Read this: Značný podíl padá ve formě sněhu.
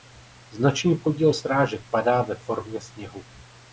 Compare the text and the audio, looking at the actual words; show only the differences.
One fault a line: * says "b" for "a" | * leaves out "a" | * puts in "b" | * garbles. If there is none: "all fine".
* puts in "srážek"